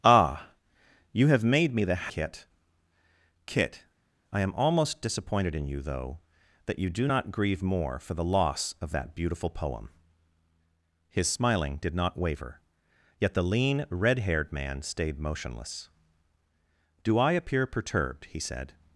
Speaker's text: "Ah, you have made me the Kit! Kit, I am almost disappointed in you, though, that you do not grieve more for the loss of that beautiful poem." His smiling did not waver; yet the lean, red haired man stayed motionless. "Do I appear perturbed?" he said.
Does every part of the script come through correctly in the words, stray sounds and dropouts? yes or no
yes